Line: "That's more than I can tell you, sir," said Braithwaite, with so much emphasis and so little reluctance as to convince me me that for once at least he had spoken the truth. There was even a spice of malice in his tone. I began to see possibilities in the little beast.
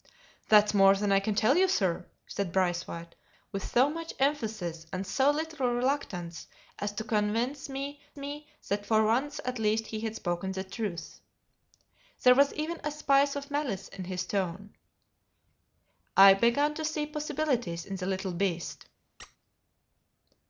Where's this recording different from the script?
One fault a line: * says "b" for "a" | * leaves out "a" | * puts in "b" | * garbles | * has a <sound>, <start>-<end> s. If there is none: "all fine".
* has a squeak, 19.2-19.4 s